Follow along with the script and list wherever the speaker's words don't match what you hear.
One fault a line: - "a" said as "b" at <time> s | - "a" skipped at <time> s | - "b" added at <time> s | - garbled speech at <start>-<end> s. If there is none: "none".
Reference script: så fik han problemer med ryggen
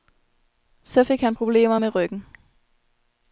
none